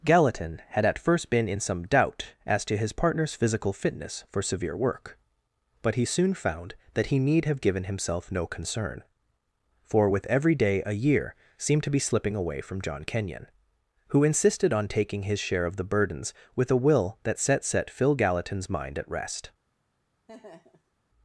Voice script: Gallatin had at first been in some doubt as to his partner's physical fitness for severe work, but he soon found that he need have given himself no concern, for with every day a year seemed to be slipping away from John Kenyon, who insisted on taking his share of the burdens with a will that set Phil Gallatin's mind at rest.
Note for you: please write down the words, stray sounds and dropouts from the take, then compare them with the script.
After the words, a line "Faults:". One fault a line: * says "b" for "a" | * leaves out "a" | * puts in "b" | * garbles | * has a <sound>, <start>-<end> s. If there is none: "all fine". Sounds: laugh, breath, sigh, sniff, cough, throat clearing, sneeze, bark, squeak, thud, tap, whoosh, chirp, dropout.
Gallatin had at first been in some doubt as to his partner's physical fitness for severe work, but he soon found that he need have given himself no concern, for with every day a year seemed to be slipping away from John Kenyon, who insisted on taking his share of the burdens with a will that set set Phil Gallatin's mind at rest.
Faults:
* puts in "set"
* has a laugh, 20.3-20.9 s